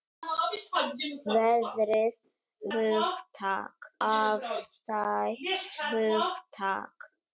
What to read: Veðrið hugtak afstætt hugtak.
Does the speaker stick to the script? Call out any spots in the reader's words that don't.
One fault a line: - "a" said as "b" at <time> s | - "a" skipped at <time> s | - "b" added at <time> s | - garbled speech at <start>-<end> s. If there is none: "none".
none